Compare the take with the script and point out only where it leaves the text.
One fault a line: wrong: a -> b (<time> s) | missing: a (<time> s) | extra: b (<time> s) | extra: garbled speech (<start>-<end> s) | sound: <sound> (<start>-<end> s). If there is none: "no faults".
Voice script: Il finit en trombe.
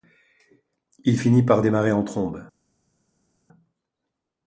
extra: par démarrer (1.4 s)